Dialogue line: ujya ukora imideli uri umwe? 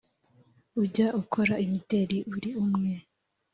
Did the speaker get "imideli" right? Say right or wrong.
right